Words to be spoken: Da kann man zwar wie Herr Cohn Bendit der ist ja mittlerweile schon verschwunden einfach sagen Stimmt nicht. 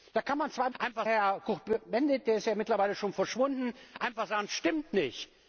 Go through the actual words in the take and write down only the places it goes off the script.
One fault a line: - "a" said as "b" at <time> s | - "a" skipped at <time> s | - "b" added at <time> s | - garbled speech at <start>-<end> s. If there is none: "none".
- "wie" said as "einfach" at 0.8 s